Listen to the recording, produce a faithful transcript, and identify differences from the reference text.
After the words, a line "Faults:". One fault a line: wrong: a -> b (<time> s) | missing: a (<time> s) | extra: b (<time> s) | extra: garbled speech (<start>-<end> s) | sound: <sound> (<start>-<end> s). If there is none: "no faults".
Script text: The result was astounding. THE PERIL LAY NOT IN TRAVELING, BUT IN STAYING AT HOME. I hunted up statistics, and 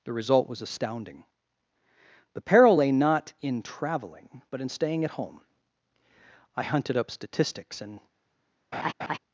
The result was astounding. THE PERIL LAY NOT IN TRAVELING, BUT IN STAYING AT HOME. I hunted up statistics, and
Faults:
sound: laugh (8.7-9.2 s)